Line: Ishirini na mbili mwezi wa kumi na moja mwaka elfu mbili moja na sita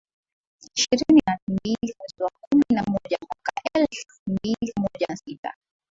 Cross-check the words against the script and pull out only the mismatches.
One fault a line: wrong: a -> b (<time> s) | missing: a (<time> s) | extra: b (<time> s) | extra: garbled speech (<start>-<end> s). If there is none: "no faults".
no faults